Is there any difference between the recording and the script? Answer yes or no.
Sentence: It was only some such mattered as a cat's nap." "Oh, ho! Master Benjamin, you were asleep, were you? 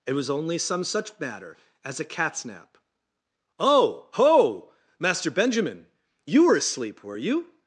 yes